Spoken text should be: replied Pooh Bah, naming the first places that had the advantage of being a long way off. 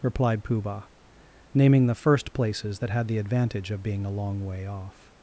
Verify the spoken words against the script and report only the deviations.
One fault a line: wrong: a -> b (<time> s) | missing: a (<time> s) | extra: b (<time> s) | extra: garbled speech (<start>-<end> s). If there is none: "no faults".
no faults